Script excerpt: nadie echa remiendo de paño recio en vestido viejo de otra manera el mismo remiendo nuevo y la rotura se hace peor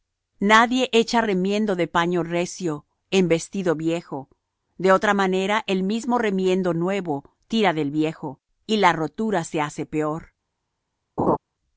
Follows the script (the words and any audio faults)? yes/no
no